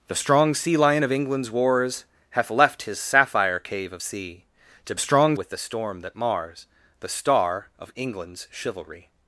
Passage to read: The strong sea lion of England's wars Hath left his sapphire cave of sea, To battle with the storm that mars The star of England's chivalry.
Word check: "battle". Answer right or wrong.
wrong